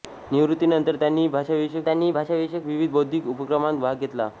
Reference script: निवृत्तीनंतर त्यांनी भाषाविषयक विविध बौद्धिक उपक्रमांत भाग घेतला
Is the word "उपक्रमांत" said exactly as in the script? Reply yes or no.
yes